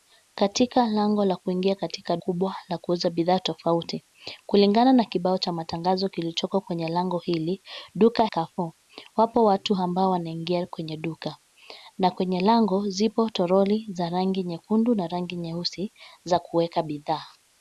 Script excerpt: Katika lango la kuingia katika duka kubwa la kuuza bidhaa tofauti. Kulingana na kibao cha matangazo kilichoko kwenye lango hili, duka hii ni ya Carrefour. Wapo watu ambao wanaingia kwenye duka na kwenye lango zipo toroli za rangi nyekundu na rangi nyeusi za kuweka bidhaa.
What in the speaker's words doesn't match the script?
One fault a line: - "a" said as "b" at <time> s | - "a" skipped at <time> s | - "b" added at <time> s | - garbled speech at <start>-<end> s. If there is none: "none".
- "duka" skipped at 2.2 s
- "hii ni ya" skipped at 8.3 s